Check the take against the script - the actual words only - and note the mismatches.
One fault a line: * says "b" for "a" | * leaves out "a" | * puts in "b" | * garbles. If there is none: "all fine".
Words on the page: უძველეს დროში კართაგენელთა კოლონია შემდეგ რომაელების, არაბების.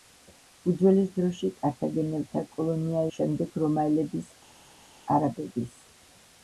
all fine